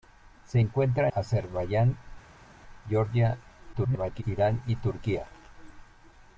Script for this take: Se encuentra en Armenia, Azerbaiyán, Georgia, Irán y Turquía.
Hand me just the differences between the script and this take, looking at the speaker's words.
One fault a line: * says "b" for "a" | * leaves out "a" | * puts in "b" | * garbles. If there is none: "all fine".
* leaves out "en Armenia"
* garbles